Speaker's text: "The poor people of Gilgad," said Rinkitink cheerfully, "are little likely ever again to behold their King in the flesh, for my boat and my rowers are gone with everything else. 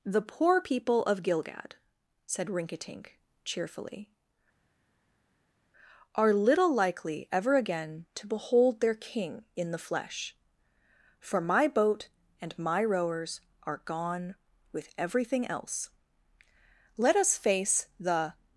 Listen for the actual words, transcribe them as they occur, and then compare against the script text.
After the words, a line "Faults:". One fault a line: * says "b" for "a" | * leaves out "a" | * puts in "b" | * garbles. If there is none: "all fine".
"The poor people of Gilgad," said Rinkitink cheerfully, "are little likely ever again to behold their King in the flesh, for my boat and my rowers are gone with everything else. Let us face the
Faults:
* puts in "Let us face the"